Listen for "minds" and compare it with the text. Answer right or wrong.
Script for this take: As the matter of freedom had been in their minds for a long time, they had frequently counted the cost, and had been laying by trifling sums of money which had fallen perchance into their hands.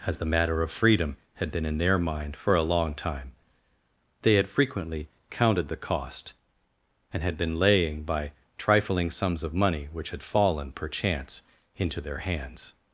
wrong